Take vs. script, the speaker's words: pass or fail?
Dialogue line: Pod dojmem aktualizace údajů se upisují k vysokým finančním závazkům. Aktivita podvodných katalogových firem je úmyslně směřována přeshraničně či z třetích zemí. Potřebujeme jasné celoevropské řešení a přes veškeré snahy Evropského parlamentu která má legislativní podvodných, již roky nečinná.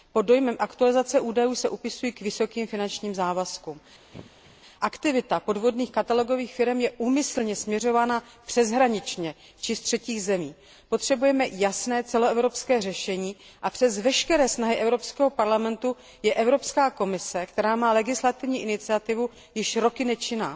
fail